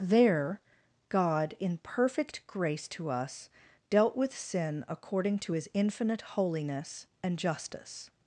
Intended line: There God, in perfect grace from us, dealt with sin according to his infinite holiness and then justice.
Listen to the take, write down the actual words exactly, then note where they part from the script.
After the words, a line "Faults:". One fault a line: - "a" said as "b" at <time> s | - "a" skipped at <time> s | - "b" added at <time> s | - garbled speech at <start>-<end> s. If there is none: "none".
There God, in perfect grace to us, dealt with sin according to his infinite holiness and justice.
Faults:
- "from" said as "to" at 2.9 s
- "then" skipped at 7.4 s